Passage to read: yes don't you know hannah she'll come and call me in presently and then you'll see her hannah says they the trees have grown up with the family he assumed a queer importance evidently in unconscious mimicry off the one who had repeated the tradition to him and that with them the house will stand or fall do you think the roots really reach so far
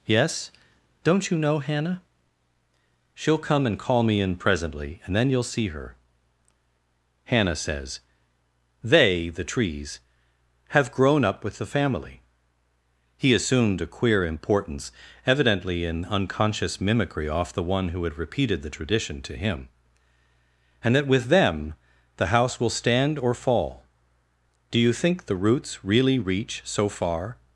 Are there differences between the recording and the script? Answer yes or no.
no